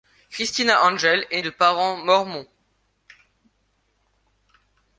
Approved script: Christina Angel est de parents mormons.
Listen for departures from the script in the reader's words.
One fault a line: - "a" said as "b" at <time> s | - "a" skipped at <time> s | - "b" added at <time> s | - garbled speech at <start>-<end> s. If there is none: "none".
none